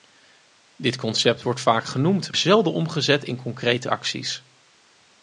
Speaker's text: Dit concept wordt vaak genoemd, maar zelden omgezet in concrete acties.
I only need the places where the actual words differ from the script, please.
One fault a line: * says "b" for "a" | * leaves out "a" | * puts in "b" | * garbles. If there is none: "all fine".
* leaves out "maar"